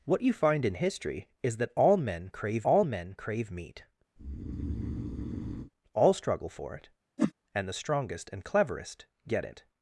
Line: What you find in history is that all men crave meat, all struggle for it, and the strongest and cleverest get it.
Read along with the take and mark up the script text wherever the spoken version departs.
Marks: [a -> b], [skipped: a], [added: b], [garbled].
What you find in history is that all men crave [added: all men crave] meat, all struggle for it, and the strongest and cleverest get it.